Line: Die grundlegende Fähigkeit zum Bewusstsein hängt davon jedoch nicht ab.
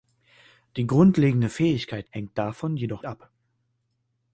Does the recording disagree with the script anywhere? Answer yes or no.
yes